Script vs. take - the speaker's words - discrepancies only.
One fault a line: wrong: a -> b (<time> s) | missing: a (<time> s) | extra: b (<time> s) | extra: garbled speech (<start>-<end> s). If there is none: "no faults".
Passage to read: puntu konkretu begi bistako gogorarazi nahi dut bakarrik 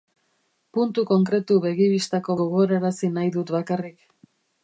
no faults